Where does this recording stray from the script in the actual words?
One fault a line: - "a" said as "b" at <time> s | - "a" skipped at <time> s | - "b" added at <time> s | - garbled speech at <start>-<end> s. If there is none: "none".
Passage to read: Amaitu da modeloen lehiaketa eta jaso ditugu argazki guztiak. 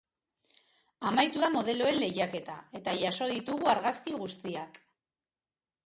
none